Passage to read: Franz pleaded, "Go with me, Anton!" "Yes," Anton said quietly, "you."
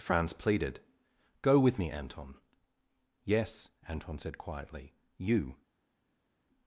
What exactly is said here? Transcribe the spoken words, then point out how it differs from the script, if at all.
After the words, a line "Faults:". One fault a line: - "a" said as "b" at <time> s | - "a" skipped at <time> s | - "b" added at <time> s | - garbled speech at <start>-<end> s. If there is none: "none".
Franz pleaded, "Go with me, Anton!" "Yes," Anton said quietly, "you."
Faults:
none